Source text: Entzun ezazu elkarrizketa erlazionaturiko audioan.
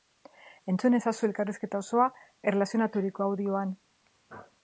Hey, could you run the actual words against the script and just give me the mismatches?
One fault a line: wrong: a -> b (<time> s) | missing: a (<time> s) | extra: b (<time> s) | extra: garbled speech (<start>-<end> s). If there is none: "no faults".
extra: osoa (1.8 s)